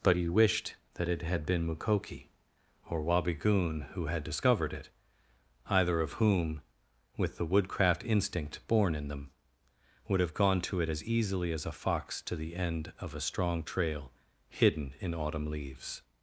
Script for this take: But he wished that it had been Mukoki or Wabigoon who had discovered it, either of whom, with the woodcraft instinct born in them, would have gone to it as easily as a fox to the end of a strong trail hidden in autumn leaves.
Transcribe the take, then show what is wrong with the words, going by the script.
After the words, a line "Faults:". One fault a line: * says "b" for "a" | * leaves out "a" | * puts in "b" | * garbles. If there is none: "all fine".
But he wished that it had been Mukoki or Wabigoon who had discovered it, either of whom, with the woodcraft instinct born in them, would have gone to it as easily as a fox to the end of a strong trail hidden in autumn leaves.
Faults:
all fine